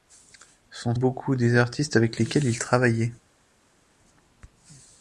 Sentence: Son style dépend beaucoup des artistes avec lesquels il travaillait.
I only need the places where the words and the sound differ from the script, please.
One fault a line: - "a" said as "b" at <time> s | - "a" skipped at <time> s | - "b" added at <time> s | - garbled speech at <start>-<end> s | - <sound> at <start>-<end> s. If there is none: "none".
- "style dépend" skipped at 0.9 s